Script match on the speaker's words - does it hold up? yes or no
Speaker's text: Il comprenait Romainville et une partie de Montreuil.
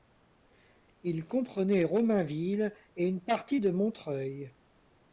yes